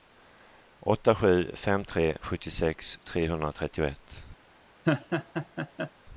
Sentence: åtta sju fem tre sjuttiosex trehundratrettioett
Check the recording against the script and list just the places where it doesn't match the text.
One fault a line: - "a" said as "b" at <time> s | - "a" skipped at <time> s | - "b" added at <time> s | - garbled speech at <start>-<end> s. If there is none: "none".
none